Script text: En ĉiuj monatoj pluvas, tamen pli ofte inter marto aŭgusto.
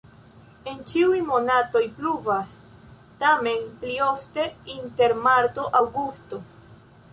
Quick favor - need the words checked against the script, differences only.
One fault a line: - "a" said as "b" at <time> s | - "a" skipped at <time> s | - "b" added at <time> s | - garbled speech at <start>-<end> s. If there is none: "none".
none